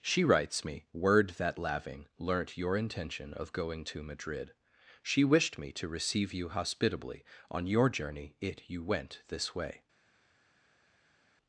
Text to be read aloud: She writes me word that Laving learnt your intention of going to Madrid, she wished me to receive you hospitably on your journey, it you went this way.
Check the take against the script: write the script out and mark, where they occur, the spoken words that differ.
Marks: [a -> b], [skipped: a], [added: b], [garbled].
She writes me word that Laving learnt your intention of going to Madrid, she wished me to receive you hospitably on your journey, it you went this way.